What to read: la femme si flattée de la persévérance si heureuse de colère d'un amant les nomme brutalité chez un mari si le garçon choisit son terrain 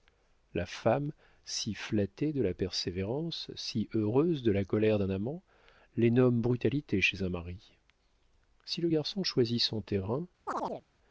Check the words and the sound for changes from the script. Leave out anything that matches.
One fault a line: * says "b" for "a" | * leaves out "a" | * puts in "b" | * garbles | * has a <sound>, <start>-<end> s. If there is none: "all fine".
* puts in "la"
* has a chirp, 10.5-10.8 s